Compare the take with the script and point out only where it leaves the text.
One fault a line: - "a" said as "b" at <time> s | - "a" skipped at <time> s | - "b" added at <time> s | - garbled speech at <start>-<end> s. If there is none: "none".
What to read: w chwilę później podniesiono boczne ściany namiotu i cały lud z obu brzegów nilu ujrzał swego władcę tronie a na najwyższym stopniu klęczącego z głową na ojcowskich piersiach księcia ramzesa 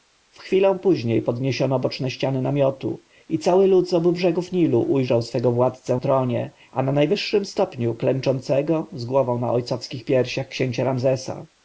none